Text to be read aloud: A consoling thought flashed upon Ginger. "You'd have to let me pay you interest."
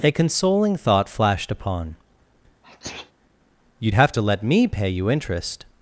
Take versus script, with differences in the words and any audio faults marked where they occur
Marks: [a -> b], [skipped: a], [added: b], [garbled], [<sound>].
A consoling thought flashed upon [skipped: Ginger.] [sneeze] "You'd have to let me pay you interest."